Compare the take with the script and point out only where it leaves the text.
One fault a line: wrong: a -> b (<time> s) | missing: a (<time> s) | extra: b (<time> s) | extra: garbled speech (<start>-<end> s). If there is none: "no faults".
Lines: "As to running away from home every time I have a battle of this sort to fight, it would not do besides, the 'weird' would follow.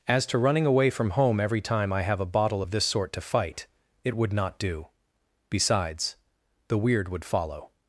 wrong: battle -> bottle (2.2 s)